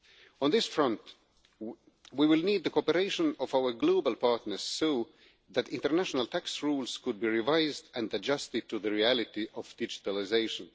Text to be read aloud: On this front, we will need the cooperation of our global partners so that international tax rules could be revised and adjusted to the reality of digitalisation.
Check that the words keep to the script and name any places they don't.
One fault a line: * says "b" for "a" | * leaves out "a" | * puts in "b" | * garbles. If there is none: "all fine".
all fine